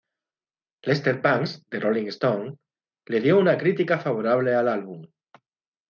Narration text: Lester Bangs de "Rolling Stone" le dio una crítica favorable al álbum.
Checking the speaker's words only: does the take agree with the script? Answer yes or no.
yes